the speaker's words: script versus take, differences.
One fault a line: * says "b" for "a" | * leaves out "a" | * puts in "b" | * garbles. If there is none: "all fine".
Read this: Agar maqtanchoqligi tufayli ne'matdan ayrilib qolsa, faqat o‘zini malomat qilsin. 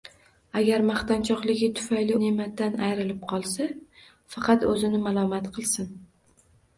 all fine